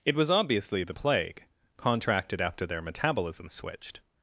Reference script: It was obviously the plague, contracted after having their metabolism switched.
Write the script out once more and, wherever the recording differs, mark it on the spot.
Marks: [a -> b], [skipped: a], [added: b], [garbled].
It was obviously the plague, contracted after [skipped: having] their metabolism switched.